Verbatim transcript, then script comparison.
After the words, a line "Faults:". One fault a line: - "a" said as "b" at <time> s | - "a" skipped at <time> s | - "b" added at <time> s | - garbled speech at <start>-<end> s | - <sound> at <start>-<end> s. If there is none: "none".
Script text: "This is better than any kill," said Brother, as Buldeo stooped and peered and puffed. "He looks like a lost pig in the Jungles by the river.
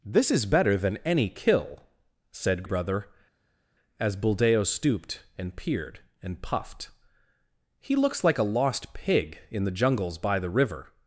"This is better than any kill," said Brother, as Buldeo stooped and peered and puffed. "He looks like a lost pig in the Jungles by the river.
Faults:
none